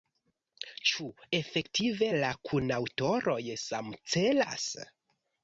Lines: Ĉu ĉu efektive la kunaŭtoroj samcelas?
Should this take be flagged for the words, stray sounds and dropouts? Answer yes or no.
yes